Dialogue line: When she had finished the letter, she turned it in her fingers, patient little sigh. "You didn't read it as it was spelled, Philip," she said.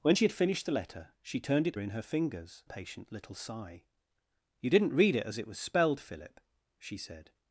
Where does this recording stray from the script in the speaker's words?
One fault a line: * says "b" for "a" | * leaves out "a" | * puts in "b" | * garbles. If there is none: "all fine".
all fine